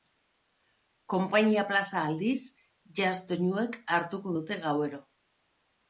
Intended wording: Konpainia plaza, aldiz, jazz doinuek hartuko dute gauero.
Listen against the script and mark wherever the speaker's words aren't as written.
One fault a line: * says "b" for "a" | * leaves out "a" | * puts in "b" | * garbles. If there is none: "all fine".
all fine